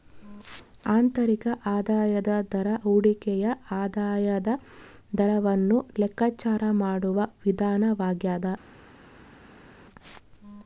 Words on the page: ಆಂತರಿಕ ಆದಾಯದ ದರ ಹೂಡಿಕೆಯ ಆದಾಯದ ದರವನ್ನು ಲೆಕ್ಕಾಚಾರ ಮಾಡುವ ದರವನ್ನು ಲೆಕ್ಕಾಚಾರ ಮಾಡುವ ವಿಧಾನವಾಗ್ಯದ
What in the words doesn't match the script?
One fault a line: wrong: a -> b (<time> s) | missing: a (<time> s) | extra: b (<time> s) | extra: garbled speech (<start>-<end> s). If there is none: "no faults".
missing: ದರವನ್ನು ಲೆಕ್ಕಾಚಾರ ಮಾಡುವ (7.2 s)